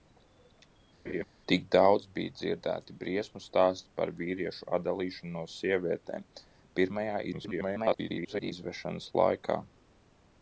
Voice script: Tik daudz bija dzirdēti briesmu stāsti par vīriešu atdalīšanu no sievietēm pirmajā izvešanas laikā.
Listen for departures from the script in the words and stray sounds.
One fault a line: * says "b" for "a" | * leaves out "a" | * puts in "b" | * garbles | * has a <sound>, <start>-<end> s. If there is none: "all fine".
* has a laugh, 1.1-1.2 s
* garbles